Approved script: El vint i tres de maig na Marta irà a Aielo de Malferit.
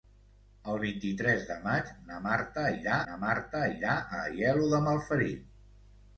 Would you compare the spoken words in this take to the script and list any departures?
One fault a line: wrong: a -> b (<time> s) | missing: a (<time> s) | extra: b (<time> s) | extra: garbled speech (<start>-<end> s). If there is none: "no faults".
extra: na Marta irà (3.1 s)